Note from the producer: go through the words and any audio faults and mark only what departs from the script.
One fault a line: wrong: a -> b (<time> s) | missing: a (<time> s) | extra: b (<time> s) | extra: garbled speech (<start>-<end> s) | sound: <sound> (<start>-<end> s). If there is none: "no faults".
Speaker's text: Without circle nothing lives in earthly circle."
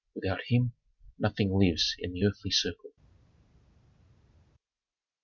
wrong: circle -> him (0.5 s)
extra: the (2.1 s)